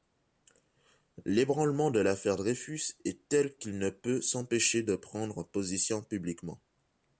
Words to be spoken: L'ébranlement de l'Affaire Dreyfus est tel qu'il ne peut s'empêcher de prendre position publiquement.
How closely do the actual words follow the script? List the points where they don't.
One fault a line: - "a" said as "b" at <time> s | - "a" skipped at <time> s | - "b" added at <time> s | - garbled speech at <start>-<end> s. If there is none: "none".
none